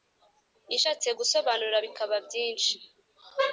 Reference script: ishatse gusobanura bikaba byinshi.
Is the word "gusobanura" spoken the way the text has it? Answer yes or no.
yes